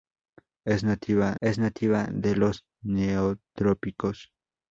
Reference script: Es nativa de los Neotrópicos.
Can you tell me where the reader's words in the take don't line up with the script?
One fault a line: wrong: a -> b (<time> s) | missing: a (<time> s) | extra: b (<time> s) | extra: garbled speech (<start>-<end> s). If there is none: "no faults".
extra: es nativa (1.4 s)